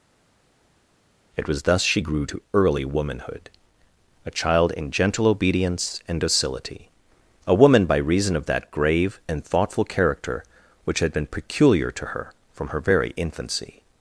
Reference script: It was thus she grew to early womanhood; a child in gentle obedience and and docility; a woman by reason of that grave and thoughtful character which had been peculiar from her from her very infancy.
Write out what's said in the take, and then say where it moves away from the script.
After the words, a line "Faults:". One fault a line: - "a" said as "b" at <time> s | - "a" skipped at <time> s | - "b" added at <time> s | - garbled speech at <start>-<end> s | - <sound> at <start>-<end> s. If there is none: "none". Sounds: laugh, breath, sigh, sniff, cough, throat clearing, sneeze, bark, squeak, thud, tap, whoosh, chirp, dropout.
It was thus she grew to early womanhood; a child in gentle obedience and docility; a woman by reason of that grave and thoughtful character which had been peculiar to her from her very infancy.
Faults:
- "and" skipped at 6.2 s
- "from" said as "to" at 11.9 s